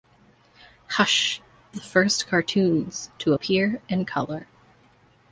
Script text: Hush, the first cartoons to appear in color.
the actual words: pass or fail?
pass